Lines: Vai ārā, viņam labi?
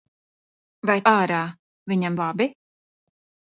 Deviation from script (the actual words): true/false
false